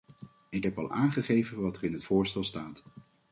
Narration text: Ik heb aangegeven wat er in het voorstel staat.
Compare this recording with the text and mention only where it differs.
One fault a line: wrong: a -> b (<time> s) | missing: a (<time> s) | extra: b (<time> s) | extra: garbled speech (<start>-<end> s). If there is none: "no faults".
extra: al (0.8 s)